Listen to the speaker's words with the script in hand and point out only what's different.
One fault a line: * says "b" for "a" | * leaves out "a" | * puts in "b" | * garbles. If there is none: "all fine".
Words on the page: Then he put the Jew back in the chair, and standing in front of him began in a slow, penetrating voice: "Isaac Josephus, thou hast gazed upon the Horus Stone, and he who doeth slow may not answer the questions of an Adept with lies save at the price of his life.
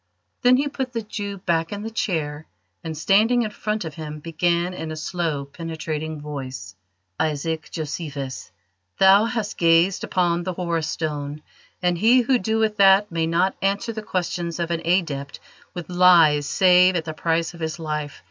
* says "that" for "slow"